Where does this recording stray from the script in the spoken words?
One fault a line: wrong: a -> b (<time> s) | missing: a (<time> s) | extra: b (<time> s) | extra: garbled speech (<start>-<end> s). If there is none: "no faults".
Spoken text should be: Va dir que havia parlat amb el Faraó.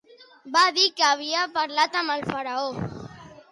no faults